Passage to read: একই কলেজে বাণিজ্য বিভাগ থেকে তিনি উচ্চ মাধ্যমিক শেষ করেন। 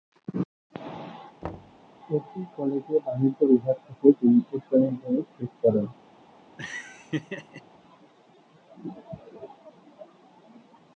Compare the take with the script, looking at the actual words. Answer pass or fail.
pass